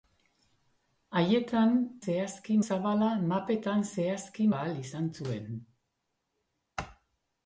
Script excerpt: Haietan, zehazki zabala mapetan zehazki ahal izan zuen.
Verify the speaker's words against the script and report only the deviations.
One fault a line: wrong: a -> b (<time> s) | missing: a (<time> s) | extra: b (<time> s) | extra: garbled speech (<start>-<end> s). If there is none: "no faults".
no faults